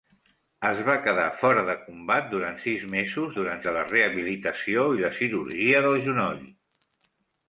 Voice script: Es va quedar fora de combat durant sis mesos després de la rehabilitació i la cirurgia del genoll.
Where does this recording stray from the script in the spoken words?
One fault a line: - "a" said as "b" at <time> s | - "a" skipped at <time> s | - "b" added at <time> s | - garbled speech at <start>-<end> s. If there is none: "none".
- "després" said as "durant" at 3.4 s